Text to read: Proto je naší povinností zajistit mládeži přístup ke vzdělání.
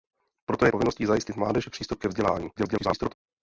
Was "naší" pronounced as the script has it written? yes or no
no